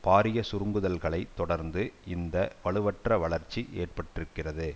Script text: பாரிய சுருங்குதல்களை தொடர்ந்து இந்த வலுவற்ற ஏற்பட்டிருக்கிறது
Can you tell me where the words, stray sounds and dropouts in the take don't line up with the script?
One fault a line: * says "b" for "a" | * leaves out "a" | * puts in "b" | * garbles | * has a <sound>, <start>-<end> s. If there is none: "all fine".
* puts in "வளர்ச்சி"